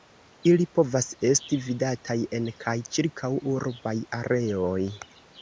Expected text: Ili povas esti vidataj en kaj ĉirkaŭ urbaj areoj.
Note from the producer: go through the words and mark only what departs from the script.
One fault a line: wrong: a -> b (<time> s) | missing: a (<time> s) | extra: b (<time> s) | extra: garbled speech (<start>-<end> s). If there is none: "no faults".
no faults